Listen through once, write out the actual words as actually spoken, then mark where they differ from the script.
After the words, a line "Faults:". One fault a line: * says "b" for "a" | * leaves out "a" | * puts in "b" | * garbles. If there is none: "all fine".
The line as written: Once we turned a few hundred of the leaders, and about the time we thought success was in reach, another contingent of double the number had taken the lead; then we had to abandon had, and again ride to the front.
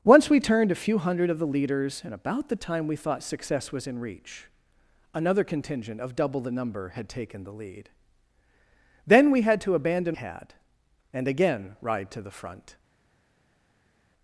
Once we turned a few hundred of the leaders, and about the time we thought success was in reach, another contingent of double the number had taken the lead; then we had to abandon had, and again ride to the front.
Faults:
all fine